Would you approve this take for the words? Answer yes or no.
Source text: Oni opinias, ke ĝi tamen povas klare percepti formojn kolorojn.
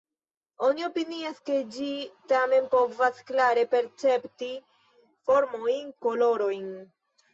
yes